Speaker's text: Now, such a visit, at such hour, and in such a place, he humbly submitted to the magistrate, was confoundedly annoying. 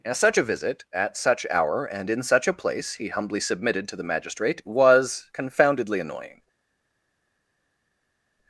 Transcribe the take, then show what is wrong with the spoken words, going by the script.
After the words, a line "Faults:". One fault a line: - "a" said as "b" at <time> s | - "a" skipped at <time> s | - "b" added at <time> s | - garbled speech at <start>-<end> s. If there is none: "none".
Now, such a visit, at such hour, and in such a place, he humbly submitted to the magistrate, was confoundedly annoying.
Faults:
none